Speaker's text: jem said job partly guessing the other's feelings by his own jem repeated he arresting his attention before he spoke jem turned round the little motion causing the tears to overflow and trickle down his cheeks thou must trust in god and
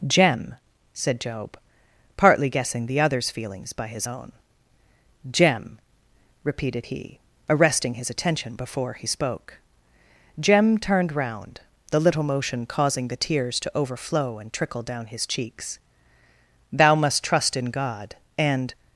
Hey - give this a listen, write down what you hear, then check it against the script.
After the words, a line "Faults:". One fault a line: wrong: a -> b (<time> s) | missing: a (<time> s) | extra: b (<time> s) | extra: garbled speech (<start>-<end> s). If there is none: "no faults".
jem said job partly guessing the other's feelings by his own jem repeated he arresting his attention before he spoke jem turned round the little motion causing the tears to overflow and trickle down his cheeks thou must trust in god and
Faults:
no faults